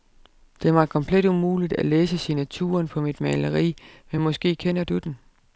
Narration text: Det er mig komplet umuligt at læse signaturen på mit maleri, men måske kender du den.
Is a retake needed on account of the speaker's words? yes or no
no